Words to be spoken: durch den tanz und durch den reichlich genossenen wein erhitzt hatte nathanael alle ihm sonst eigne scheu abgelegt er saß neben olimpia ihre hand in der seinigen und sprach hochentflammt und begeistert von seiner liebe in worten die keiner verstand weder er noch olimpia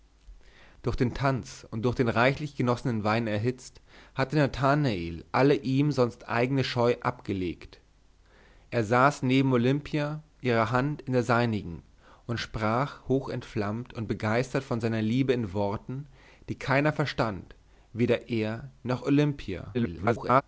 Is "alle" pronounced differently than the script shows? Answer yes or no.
no